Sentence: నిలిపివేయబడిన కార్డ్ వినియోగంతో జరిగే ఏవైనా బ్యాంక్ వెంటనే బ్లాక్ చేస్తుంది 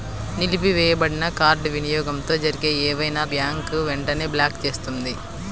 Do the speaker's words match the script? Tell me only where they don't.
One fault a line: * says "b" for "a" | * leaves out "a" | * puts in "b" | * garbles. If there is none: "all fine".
all fine